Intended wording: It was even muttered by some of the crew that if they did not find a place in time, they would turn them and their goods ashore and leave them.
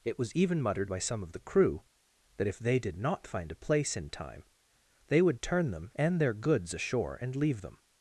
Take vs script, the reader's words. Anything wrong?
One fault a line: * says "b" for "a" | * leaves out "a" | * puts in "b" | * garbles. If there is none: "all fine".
all fine